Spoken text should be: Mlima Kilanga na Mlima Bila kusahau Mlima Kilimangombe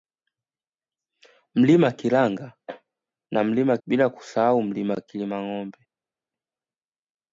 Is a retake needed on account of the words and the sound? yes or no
no